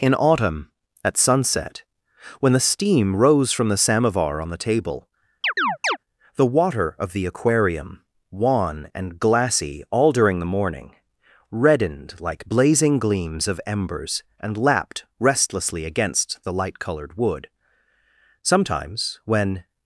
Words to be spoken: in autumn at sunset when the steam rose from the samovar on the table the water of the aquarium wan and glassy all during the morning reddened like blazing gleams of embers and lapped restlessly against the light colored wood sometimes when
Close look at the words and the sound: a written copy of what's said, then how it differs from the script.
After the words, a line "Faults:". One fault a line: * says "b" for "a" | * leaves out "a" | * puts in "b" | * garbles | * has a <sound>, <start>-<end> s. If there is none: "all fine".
in autumn at sunset when the steam rose from the samovar on the table the water of the aquarium wan and glassy all during the morning reddened like blazing gleams of embers and lapped restlessly against the light colored wood sometimes when
Faults:
* has a chirp, 5.4-6.0 s